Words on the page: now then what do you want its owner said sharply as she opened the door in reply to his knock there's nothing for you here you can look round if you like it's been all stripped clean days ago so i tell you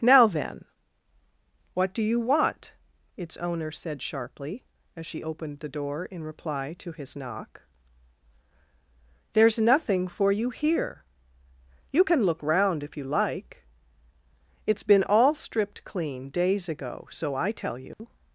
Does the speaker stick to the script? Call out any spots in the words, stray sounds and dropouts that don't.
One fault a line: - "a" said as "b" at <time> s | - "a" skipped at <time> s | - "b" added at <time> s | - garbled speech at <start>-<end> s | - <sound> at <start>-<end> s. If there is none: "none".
- dropout at 17.9-18.0 s